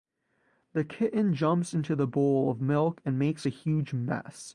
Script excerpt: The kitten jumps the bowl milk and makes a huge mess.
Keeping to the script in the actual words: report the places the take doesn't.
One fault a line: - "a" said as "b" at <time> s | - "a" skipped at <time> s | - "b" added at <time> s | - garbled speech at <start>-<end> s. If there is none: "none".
- "into" added at 1.7 s
- "of" added at 2.5 s